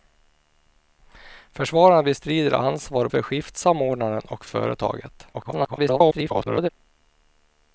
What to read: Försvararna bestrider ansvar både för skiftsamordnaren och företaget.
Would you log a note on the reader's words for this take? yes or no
yes